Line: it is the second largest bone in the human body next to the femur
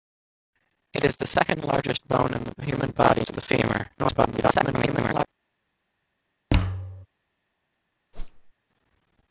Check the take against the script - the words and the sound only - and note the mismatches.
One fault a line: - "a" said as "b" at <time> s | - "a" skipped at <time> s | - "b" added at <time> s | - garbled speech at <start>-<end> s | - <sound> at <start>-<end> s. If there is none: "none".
- "next" skipped at 3.3 s
- garbled speech at 4.0-5.3 s
- thud at 6.5-7.1 s
- whoosh at 8.1-8.5 s